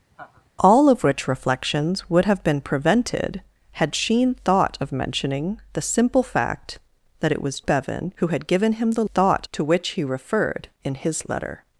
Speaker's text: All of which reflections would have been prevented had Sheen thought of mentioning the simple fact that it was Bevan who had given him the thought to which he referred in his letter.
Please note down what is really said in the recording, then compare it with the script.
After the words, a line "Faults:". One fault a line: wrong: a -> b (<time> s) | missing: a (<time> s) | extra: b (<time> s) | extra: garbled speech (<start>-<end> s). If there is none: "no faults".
All of which reflections would have been prevented had Sheen thought of mentioning the simple fact that it was Bevan who had given him the thought to which he referred in his letter.
Faults:
no faults